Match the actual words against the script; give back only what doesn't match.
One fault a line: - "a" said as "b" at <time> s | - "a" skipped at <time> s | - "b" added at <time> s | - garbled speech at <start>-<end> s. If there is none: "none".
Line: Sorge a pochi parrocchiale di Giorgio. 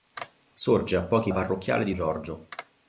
none